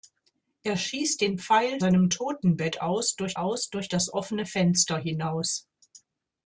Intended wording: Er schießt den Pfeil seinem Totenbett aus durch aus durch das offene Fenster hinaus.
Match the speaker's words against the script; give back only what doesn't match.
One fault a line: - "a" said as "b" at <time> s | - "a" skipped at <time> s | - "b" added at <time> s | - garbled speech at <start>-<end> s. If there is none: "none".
none